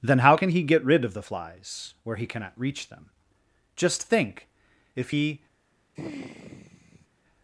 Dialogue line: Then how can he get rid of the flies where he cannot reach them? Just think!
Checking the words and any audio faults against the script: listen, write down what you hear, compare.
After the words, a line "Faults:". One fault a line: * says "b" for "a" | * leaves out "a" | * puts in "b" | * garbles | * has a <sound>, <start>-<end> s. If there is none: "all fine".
Then how can he get rid of the flies where he cannot reach them? Just think! If he
Faults:
* puts in "If he"
* has a sigh, 6.0-7.1 s